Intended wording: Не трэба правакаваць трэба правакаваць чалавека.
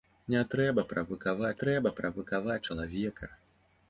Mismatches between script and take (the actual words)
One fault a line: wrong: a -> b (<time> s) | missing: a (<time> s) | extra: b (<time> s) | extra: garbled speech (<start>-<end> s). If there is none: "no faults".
no faults